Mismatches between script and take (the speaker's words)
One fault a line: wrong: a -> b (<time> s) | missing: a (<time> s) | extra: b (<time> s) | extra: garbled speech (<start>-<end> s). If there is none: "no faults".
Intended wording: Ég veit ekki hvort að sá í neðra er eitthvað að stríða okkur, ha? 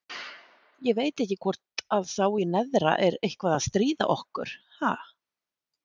no faults